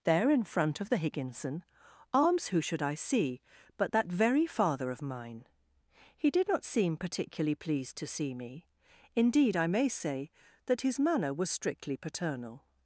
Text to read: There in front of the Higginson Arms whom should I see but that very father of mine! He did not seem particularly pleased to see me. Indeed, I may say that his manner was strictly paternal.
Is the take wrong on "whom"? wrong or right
wrong